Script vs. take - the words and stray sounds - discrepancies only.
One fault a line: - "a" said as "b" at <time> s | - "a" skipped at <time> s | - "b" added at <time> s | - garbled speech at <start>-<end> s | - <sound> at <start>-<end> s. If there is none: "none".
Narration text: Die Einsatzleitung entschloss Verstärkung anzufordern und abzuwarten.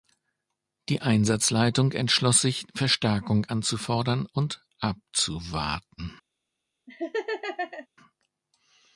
- "sich" added at 2.4 s
- laugh at 6.9-7.9 s